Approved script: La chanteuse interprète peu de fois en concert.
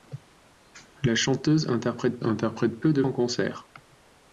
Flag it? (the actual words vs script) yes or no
yes